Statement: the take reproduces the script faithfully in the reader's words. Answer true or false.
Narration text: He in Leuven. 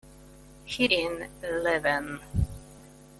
true